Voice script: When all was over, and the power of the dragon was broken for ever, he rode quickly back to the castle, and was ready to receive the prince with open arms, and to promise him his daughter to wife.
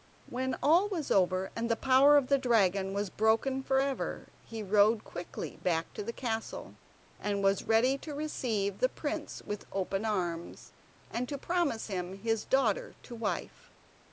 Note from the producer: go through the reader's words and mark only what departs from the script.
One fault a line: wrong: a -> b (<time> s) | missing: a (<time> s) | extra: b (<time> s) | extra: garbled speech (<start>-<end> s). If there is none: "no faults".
no faults